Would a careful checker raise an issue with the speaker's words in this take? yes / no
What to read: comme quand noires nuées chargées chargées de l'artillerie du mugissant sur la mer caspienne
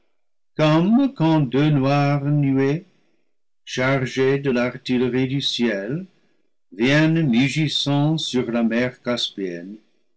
yes